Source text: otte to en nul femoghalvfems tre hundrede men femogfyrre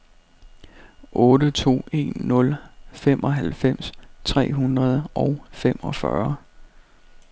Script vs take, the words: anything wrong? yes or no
yes